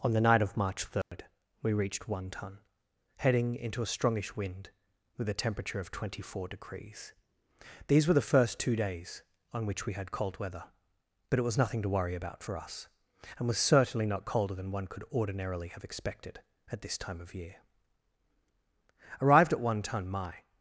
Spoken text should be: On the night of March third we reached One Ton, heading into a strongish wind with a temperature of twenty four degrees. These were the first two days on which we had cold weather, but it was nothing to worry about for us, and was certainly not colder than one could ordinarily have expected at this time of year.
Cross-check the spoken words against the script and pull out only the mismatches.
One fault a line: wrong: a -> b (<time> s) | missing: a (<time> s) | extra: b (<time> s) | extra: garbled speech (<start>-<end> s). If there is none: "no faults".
extra: Arrived at One Ton my (19.2 s)